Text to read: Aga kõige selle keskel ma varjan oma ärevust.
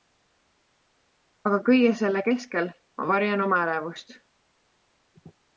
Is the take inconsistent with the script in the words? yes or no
no